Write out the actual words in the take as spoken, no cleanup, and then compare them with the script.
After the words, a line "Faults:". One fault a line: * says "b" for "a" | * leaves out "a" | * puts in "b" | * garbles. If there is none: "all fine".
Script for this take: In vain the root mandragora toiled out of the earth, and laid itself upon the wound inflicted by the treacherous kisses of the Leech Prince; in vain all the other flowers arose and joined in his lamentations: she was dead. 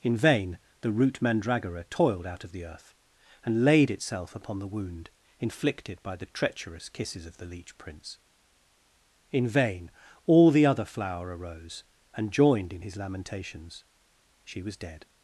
In vain the root mandragora toiled out of the earth, and laid itself upon the wound inflicted by the treacherous kisses of the Leech Prince; in vain all the other flower arose and joined in his lamentations: she was dead.
Faults:
* says "flower" for "flowers"